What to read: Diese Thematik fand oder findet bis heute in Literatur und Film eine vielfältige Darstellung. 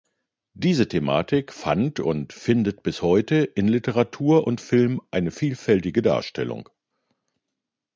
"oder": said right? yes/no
no